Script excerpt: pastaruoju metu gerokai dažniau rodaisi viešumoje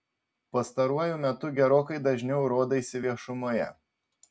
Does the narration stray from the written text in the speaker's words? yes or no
no